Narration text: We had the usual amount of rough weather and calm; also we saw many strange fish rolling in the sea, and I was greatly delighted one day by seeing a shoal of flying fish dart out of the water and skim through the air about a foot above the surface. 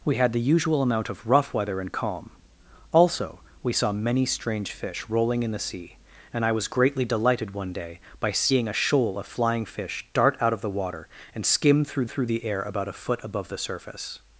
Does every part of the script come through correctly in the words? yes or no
no